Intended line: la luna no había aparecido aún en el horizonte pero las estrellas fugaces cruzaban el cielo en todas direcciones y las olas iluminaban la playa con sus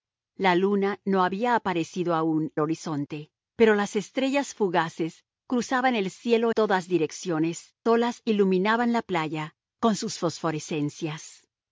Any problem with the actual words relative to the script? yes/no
yes